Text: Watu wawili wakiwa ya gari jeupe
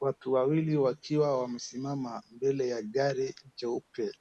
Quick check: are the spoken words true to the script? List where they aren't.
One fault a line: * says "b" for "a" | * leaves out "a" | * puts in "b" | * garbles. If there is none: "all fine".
* puts in "wamesimama mbele"